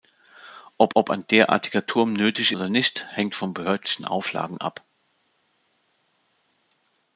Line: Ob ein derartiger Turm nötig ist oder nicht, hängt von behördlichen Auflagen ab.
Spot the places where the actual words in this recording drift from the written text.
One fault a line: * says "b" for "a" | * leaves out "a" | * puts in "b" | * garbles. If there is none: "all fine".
* puts in "ob"
* leaves out "ist"